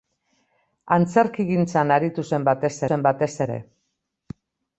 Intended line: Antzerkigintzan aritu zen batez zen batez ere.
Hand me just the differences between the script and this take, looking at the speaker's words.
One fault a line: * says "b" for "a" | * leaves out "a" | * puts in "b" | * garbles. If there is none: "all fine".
all fine